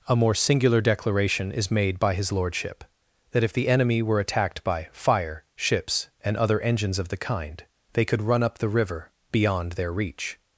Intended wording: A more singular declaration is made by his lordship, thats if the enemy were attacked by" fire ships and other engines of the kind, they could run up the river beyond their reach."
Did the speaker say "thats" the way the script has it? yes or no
no